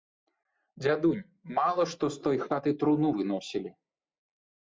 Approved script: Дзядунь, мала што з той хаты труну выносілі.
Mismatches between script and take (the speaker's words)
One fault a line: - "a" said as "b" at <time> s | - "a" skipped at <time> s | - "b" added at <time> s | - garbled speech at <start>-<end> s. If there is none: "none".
none